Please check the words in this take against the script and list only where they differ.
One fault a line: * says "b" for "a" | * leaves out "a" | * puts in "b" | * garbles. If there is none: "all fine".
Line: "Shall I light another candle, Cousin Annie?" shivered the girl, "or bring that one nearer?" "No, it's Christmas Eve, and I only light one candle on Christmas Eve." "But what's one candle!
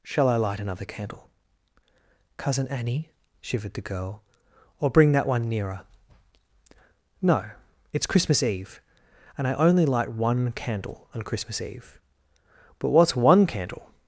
all fine